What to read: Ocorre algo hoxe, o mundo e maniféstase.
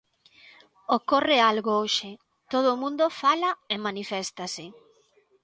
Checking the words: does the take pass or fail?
fail